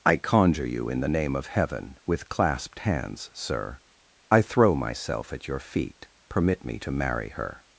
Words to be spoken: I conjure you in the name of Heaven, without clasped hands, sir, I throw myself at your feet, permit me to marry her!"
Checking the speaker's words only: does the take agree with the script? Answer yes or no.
no